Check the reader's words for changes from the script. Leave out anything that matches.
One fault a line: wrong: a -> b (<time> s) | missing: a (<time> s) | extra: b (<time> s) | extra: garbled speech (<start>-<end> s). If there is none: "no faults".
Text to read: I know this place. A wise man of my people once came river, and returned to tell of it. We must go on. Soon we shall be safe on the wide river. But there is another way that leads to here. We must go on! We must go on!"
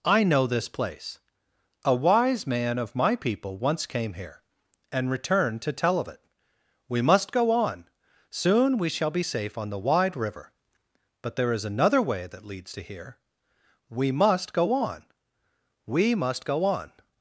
wrong: river -> here (4.1 s)